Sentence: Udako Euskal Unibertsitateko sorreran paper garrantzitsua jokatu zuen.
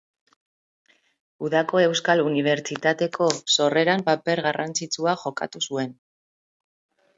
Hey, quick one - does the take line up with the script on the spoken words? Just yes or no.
yes